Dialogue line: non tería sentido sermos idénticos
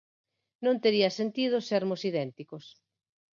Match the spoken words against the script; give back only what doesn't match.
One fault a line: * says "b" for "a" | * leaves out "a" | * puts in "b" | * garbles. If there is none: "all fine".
all fine